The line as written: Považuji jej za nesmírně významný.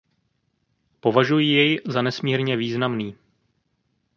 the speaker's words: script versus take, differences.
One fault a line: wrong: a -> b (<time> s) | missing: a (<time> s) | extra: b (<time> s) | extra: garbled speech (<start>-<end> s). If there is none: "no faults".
no faults